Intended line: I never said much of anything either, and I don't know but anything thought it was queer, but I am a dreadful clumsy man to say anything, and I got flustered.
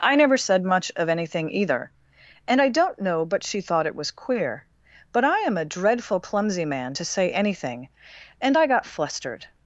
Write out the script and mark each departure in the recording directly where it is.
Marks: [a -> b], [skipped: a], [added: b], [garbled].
I never said much of anything either, and I don't know but [anything -> she] thought it was queer, but I am a dreadful clumsy man to say anything, and I got flustered.